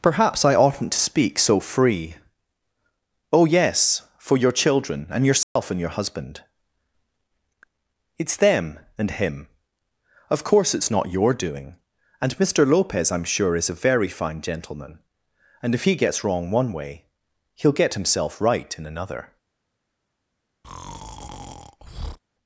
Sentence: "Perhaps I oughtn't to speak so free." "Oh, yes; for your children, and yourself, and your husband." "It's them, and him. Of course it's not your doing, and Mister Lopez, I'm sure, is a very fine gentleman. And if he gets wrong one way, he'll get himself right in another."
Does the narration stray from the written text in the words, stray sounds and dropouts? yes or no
yes